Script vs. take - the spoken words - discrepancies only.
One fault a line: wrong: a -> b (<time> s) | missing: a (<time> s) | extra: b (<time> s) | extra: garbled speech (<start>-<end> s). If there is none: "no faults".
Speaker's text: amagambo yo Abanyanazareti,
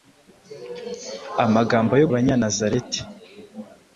no faults